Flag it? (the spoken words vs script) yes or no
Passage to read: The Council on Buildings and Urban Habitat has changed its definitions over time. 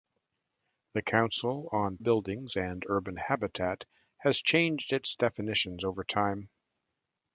no